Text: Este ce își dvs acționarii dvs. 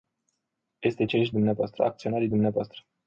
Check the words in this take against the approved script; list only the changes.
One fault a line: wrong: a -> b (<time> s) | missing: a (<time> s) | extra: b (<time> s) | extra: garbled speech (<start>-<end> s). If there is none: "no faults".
no faults